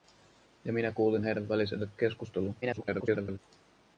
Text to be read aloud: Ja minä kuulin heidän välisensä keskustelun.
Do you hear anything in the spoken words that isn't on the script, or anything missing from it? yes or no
yes